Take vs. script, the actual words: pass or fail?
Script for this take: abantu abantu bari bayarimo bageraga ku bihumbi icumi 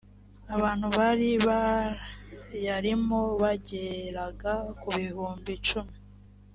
fail